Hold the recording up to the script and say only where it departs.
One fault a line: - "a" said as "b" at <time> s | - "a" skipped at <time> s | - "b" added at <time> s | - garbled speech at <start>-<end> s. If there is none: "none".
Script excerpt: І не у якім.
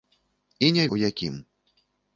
none